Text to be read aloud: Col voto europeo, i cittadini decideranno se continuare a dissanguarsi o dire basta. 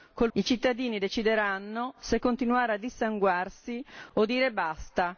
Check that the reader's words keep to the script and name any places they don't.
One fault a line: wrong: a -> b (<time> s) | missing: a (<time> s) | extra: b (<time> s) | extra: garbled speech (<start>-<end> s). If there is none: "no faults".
missing: voto europeo (0.3 s)